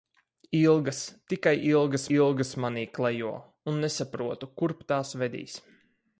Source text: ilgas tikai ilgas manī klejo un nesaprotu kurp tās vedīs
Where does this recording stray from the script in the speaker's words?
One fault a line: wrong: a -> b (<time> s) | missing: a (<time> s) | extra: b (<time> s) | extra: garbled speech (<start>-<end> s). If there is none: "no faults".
extra: ilgas (2.2 s)